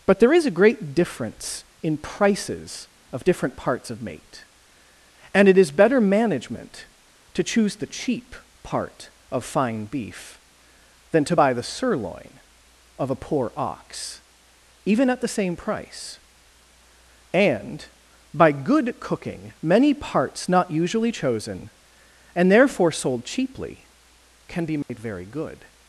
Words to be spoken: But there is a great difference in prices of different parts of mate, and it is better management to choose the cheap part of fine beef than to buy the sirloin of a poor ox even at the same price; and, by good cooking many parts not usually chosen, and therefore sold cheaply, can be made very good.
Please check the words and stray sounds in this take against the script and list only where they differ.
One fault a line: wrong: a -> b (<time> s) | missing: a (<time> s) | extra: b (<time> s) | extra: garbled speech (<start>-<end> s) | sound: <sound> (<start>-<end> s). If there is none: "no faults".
sound: dropout (24.8-24.9 s)